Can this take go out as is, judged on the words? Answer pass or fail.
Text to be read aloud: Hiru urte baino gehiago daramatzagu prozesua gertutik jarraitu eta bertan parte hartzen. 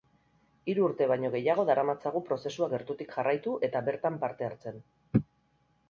pass